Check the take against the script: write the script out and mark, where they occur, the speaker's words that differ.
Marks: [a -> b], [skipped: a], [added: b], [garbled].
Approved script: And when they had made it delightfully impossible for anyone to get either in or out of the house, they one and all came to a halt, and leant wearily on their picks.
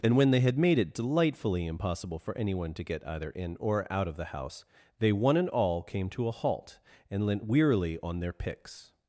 And when they had made it delightfully impossible for anyone to get either in or out of the house, they one and all came to a halt, and leant wearily on their picks.